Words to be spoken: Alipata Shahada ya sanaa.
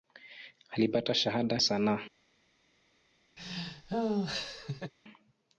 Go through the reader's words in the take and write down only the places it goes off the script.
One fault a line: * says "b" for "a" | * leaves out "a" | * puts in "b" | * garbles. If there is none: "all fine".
* leaves out "ya"